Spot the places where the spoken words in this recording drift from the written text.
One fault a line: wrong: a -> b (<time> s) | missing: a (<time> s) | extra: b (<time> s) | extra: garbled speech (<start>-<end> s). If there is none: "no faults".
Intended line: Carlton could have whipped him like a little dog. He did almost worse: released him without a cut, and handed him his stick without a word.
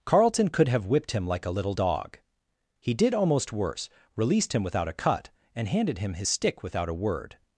no faults